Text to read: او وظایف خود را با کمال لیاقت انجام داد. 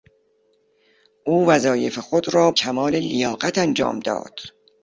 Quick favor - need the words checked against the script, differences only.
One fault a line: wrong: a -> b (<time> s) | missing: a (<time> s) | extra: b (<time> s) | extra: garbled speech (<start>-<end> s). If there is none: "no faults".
missing: با (2.5 s)